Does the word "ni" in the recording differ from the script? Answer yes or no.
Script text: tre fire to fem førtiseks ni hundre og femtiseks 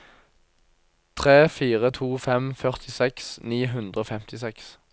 no